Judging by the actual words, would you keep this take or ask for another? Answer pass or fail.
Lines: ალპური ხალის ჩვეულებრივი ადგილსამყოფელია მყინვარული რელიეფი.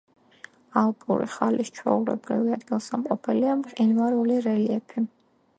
pass